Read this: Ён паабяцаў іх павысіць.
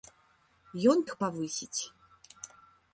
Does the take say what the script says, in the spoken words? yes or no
no